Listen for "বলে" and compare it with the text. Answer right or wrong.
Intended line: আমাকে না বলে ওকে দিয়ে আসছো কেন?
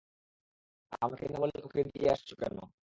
right